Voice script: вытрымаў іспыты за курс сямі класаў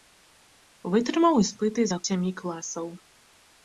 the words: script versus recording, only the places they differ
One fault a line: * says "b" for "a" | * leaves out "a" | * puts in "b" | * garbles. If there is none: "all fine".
* leaves out "курс"